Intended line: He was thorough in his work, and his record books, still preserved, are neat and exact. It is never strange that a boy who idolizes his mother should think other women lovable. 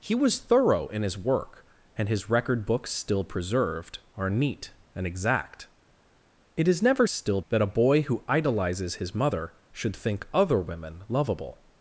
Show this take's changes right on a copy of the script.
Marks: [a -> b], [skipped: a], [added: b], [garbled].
He was thorough in his work, and his record books, still preserved, are neat and exact. It is never [strange -> still] that a boy who idolizes his mother should think other women lovable.